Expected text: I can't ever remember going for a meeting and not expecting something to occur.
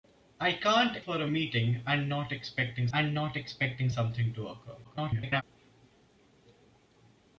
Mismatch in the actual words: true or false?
true